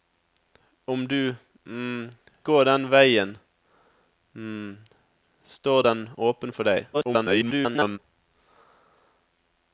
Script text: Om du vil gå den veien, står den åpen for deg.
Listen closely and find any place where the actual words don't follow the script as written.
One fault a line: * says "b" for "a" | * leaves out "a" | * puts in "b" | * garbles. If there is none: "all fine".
* leaves out "vil"
* garbles